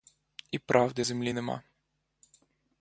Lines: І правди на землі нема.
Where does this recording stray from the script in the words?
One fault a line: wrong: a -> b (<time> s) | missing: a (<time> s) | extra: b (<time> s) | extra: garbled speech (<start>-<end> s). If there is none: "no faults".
missing: на (1.1 s)